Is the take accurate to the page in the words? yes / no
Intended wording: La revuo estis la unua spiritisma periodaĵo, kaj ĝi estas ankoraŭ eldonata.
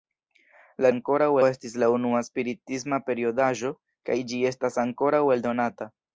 no